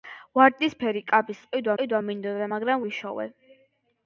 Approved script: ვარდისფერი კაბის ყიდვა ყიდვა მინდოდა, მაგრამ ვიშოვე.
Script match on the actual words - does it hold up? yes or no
yes